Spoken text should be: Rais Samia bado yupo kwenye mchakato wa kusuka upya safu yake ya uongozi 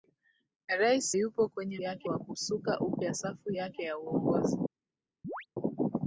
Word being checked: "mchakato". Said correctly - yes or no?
no